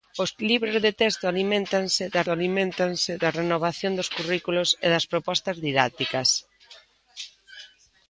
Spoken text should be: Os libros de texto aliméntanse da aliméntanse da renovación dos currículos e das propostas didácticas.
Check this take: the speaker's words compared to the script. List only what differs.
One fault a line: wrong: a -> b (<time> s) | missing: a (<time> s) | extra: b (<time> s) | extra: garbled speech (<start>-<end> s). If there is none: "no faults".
no faults